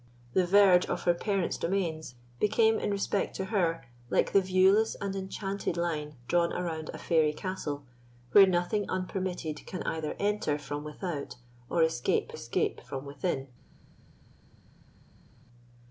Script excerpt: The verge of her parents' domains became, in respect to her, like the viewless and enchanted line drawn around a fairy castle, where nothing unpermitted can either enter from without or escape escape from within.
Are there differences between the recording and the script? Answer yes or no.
no